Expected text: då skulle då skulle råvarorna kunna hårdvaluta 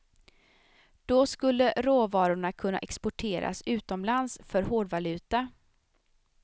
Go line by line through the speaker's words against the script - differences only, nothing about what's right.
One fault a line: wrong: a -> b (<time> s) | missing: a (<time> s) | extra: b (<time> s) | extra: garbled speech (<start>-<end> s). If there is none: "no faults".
wrong: då skulle råvarorna kunna -> råvarorna kunna exporteras utomlands för (1.8 s)